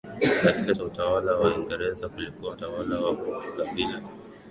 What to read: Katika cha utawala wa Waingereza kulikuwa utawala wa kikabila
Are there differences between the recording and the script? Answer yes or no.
no